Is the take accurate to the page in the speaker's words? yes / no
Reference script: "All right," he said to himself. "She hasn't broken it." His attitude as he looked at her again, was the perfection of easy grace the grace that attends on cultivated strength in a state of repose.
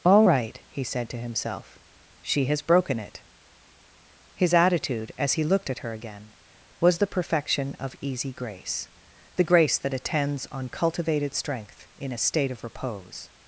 no